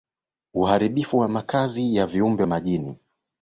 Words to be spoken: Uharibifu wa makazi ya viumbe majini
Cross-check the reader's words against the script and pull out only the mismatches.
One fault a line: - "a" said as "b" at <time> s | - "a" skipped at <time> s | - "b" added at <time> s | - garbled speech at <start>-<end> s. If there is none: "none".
none